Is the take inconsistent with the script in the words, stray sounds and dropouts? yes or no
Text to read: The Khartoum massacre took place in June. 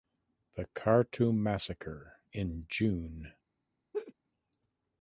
yes